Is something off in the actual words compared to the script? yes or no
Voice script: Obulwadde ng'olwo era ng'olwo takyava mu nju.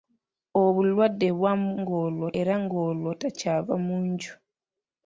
no